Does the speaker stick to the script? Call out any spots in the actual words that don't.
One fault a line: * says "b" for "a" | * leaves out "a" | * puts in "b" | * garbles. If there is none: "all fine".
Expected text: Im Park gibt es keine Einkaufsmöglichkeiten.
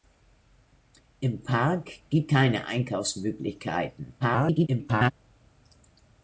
* leaves out "es"
* garbles